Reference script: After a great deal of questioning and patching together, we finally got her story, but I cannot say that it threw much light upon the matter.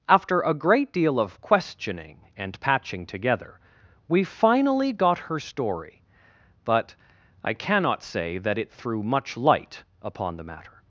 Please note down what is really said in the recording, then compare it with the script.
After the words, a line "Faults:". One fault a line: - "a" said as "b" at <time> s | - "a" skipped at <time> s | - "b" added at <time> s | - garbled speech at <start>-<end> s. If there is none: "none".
After a great deal of questioning and patching together, we finally got her story, but I cannot say that it threw much light upon the matter.
Faults:
none